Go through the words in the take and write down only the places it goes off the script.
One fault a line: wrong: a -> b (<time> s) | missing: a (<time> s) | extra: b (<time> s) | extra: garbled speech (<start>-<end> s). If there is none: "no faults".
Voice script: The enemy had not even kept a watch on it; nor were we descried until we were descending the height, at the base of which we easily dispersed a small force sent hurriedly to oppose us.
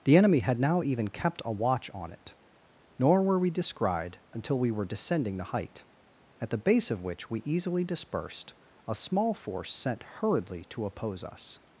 wrong: not -> now (0.6 s)